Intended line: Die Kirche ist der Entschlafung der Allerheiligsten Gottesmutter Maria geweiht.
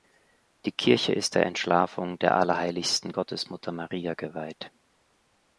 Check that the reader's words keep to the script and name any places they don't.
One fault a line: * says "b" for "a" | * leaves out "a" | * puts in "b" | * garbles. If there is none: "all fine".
all fine